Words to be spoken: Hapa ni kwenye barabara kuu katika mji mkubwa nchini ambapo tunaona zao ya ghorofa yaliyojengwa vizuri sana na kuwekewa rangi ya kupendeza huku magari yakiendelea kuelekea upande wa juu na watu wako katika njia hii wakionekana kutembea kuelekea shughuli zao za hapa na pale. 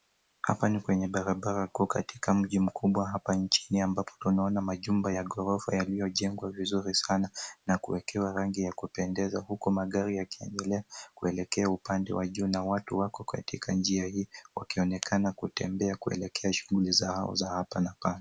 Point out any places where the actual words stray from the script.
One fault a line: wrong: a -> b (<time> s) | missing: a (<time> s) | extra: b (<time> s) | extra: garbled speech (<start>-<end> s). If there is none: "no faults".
extra: hapa (3.1 s)
wrong: zao -> majumba (4.6 s)